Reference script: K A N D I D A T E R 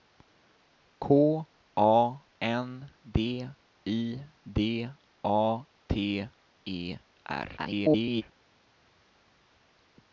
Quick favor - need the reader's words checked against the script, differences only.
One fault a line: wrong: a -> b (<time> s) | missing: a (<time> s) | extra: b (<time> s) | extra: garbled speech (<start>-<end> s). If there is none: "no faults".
extra: garbled speech (7.6-8.2 s)